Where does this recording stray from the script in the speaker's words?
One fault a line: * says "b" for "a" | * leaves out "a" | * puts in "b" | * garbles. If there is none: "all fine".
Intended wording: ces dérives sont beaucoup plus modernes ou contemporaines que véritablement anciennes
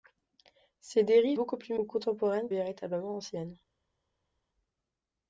* leaves out "sont"
* leaves out "modernes"
* leaves out "que"